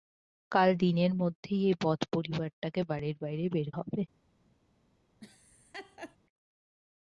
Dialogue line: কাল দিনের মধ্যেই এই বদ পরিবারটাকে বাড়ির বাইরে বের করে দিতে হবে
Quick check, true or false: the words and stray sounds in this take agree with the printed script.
false